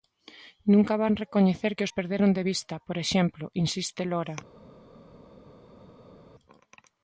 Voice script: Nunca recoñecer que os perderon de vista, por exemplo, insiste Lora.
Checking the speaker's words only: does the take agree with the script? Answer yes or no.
no